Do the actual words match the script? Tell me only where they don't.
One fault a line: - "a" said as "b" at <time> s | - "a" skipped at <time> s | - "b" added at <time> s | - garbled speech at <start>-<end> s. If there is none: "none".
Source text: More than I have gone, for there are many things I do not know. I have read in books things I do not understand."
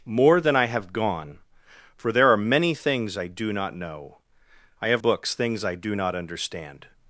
- "read in" skipped at 5.0 s